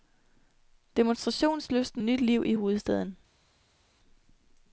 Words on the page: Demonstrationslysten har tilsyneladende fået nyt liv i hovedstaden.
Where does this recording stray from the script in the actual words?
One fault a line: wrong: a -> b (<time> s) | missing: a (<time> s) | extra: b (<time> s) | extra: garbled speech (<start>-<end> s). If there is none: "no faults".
missing: har tilsyneladende fået (2.0 s)